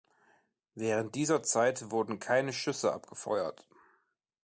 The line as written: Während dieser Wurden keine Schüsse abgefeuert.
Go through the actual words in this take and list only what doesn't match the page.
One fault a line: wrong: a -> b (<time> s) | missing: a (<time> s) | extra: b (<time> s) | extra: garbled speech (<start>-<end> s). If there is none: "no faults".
extra: Zeit (1.4 s)